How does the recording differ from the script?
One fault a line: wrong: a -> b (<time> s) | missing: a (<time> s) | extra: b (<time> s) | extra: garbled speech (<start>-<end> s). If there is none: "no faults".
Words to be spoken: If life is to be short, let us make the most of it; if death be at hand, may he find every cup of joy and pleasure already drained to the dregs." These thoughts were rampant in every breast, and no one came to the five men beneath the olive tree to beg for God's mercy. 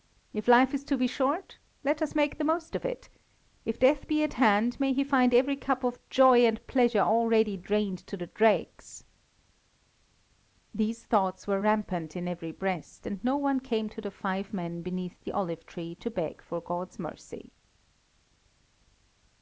no faults